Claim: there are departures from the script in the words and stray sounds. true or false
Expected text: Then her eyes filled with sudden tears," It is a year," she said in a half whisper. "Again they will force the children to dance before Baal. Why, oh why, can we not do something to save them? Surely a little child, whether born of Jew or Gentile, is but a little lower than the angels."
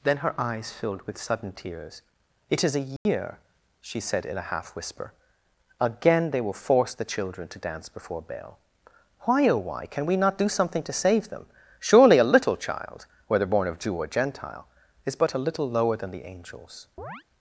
true